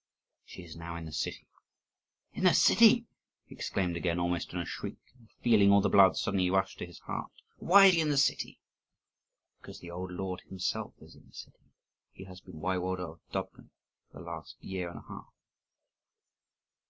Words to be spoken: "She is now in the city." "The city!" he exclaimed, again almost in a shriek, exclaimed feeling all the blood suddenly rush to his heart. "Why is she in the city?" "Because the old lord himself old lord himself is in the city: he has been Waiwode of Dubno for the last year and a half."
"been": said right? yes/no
yes